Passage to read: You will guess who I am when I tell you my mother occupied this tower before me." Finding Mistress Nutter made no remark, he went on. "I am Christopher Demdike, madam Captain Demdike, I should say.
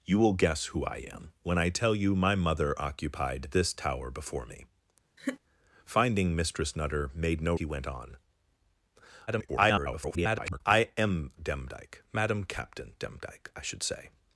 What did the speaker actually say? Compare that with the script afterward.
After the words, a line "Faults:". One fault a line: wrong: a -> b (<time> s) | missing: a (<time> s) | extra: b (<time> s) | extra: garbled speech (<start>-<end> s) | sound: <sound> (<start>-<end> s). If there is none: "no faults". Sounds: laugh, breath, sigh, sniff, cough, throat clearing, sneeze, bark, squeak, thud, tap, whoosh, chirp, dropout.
You will guess who I am when I tell you my mother occupied this tower before me." Finding Mistress Nutter made no he went on. [garbled] "I am Demdike, madam Captain Demdike, I should say.
Faults:
sound: laugh (5.2-5.4 s)
missing: remark (7.5 s)
extra: garbled speech (9.3-10.6 s)
missing: Christopher (11.3 s)